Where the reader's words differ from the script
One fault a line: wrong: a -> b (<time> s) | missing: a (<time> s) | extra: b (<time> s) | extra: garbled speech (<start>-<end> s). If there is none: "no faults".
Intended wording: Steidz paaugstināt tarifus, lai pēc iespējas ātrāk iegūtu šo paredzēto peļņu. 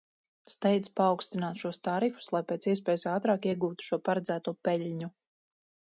extra: šos (1.6 s)